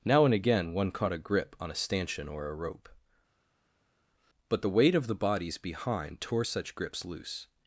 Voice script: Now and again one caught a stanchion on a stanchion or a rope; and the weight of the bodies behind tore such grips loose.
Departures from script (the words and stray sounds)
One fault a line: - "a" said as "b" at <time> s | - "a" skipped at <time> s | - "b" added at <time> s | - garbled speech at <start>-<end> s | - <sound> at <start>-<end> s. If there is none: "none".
- "stanchion" said as "grip" at 1.2 s
- "and" said as "but" at 4.5 s